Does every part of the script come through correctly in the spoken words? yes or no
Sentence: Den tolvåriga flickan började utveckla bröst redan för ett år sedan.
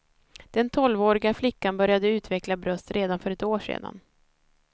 yes